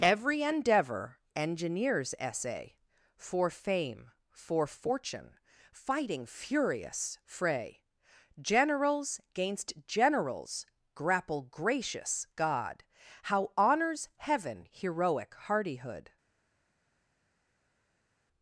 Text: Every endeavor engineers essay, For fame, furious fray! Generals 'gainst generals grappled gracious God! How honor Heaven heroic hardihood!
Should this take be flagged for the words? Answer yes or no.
yes